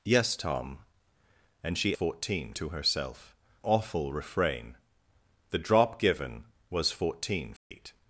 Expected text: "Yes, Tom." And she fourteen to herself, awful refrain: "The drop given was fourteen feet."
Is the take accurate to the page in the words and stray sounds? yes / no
no